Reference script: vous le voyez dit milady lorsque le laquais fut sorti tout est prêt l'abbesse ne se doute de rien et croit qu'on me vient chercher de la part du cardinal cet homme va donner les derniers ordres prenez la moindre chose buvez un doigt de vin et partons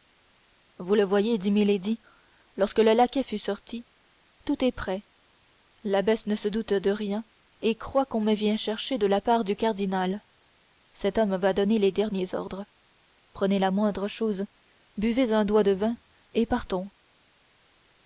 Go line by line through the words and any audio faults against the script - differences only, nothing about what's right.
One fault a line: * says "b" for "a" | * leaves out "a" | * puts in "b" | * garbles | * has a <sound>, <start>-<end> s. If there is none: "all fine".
all fine